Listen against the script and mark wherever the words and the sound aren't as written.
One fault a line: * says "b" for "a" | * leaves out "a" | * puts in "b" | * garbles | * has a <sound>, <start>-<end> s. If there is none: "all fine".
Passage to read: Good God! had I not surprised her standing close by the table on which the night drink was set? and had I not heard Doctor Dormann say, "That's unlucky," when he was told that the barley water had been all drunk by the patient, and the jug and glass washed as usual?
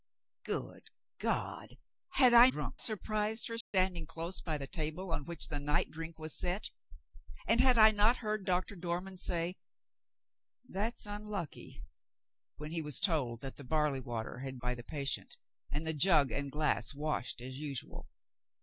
* says "drunk" for "not"
* has a dropout, 3.6-3.7 s
* leaves out "been all drunk"